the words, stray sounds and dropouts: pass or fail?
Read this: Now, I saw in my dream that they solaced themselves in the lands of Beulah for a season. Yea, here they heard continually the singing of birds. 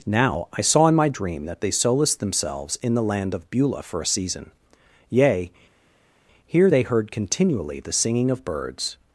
fail